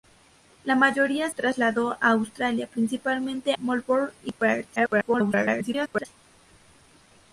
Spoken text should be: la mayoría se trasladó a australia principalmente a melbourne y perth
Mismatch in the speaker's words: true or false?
true